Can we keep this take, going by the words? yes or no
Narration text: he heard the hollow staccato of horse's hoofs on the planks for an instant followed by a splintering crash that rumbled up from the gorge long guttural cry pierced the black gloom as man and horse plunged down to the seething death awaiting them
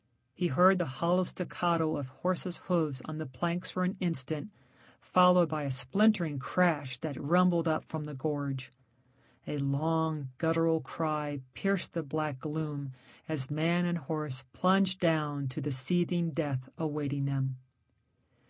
no